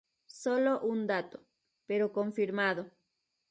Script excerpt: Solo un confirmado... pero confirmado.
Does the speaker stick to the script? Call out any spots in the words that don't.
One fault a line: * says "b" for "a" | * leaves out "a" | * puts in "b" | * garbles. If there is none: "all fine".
* says "dato" for "confirmado"